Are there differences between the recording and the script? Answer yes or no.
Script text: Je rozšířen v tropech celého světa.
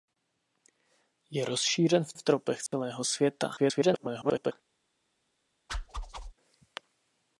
yes